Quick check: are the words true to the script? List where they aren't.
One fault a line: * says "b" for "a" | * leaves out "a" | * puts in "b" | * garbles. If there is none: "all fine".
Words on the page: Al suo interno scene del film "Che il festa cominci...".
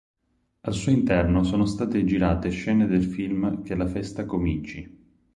* puts in "sono state girate"
* says "la" for "il"